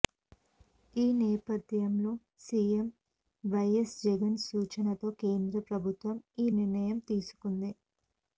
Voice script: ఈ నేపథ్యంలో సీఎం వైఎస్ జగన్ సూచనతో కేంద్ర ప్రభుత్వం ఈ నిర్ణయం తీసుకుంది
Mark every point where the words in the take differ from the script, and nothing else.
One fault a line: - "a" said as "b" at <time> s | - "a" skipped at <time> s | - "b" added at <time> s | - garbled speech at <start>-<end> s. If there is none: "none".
none